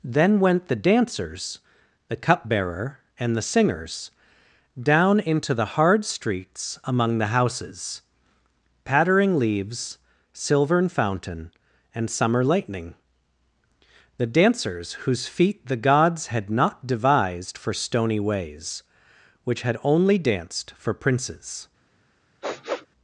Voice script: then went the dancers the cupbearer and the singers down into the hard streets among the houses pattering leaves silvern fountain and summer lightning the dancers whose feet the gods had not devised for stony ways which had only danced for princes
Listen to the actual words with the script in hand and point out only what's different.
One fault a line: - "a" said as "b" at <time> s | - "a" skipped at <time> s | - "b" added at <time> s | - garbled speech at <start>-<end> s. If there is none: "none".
none